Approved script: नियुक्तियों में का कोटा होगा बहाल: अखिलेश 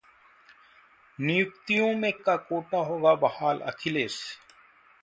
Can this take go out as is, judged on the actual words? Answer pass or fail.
pass